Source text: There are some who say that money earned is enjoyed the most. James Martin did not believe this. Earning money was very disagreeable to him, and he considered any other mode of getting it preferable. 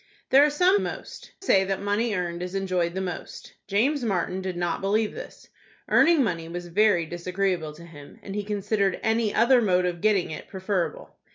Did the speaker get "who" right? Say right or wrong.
wrong